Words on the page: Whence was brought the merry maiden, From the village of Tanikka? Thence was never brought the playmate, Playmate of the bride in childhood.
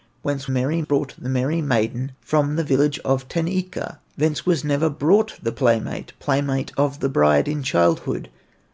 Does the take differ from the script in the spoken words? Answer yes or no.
yes